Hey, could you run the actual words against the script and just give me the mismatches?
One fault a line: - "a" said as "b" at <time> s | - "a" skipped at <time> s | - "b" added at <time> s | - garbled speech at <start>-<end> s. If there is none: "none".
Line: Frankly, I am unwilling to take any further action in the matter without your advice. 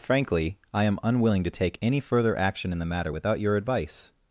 none